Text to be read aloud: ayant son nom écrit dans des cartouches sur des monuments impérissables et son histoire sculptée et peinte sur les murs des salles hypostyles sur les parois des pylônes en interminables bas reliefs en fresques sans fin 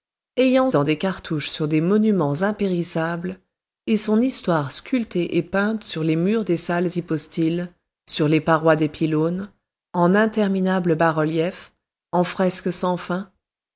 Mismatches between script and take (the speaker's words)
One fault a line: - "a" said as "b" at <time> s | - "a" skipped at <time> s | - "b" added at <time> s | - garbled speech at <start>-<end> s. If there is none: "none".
- "son nom écrit" skipped at 0.7 s